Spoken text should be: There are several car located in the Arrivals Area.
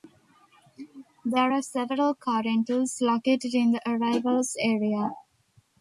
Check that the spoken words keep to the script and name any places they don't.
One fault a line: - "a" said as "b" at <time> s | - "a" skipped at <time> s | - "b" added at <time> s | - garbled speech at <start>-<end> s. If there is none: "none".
- "rentals" added at 2.4 s